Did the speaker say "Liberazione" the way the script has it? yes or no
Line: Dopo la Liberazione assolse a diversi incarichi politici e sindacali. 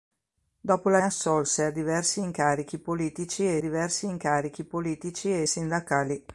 no